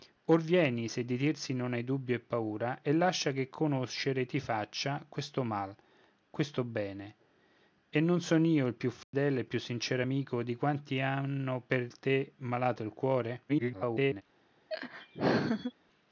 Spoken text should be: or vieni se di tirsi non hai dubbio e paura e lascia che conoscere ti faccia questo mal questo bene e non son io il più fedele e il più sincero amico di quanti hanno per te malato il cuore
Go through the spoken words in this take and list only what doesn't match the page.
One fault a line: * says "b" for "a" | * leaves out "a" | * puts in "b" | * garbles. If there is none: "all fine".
* garbles